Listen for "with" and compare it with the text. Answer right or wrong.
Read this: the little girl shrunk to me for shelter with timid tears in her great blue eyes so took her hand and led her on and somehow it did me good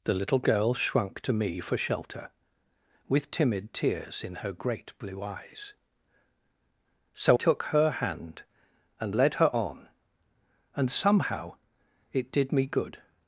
right